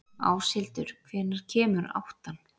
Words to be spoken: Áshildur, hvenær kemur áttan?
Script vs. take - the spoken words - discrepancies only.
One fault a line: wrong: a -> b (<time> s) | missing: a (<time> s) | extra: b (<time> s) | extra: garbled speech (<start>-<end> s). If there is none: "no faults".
no faults